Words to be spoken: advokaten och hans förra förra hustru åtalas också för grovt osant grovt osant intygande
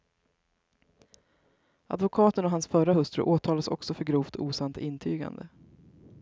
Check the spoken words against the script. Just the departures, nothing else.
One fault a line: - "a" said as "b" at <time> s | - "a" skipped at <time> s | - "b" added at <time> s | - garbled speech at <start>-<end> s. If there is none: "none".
- "förra" skipped at 2.9 s
- "grovt osant" skipped at 4.8 s